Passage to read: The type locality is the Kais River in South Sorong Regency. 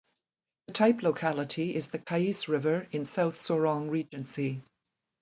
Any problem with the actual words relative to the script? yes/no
no